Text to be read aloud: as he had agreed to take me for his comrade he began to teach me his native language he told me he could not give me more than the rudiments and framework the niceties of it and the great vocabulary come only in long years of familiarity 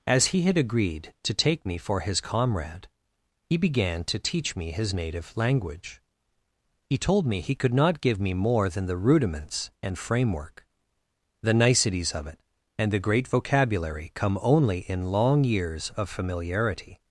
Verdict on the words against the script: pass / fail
pass